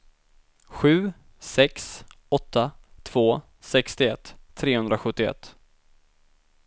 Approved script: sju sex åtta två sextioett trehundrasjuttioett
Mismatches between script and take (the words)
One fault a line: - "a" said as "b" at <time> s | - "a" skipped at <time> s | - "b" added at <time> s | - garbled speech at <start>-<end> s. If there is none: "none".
none